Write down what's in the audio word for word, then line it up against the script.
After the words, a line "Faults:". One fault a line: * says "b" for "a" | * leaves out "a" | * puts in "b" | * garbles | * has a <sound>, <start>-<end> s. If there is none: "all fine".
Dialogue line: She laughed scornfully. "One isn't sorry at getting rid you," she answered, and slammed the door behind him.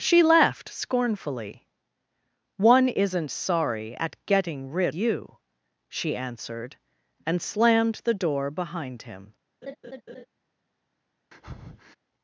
She laughed scornfully. "One isn't sorry at getting rid you," she answered, and slammed the door behind him.
Faults:
* has a laugh, 9.6-10.3 s
* has a breath, 11.3-12.0 s